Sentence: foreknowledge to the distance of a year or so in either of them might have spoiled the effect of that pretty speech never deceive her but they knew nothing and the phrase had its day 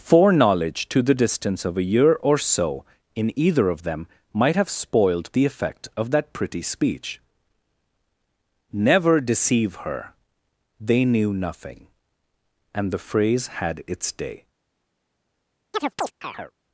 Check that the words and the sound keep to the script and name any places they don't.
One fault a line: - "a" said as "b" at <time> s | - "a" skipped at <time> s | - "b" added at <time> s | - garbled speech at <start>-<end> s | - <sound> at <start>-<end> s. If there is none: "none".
- "but" skipped at 10.1 s
- chirp at 15.7-16.5 s